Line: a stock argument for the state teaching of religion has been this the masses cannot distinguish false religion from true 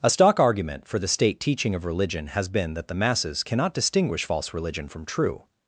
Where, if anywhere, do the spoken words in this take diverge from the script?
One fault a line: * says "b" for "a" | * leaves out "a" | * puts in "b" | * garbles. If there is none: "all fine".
* says "that" for "this"